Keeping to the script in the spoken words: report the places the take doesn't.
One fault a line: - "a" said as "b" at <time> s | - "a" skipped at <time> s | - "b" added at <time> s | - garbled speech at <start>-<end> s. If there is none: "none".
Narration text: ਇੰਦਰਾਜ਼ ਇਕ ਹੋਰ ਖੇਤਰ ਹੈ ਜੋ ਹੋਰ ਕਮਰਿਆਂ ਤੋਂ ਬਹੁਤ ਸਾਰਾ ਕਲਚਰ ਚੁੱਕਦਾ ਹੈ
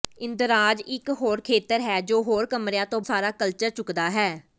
- "ਬਹੁਤ" skipped at 3.0 s